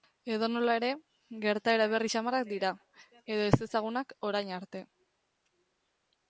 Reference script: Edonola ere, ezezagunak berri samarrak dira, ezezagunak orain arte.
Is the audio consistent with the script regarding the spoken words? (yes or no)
no